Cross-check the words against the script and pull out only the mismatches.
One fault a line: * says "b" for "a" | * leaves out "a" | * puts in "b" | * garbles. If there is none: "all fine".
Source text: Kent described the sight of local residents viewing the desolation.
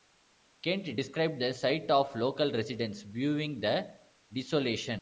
all fine